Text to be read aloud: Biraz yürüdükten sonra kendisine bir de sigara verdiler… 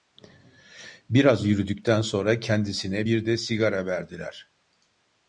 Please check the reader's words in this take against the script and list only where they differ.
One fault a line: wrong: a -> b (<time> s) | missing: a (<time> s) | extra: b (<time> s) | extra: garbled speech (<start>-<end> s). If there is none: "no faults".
no faults